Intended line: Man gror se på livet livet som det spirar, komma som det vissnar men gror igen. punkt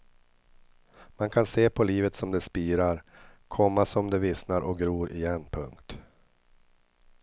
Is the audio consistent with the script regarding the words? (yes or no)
no